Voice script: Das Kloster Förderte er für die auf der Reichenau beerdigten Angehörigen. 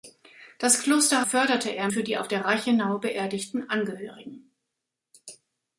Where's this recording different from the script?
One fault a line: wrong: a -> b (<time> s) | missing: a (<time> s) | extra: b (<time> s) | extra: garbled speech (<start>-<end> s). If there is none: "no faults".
no faults